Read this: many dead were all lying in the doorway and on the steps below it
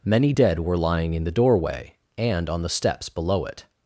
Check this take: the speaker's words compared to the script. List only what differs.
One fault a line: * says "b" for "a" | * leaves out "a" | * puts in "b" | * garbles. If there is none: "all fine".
* leaves out "all"